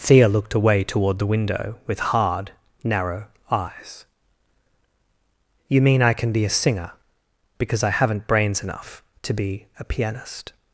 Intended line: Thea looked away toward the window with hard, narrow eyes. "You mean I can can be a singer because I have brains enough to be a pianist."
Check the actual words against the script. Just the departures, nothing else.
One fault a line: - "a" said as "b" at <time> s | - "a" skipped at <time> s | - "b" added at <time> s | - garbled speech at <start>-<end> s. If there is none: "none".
- "can" skipped at 6.3 s
- "have" said as "haven't" at 7.9 s